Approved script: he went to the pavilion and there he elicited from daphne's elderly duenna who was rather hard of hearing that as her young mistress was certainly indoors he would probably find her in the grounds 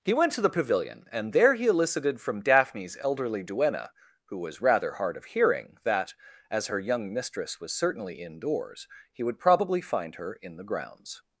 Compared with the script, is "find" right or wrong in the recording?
right